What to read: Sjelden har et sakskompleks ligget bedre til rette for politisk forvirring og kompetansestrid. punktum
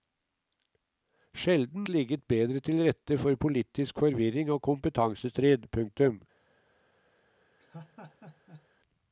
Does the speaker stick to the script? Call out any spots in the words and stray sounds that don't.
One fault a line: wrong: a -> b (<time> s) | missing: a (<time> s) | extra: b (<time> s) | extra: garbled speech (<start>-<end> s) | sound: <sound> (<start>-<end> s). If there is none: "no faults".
missing: har et sakskompleks (1.9 s)
sound: laugh (7.6-8.7 s)